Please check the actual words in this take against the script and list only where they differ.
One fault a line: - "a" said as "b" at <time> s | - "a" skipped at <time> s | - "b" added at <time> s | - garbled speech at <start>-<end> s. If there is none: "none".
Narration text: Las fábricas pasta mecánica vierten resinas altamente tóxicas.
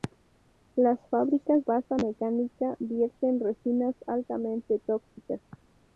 none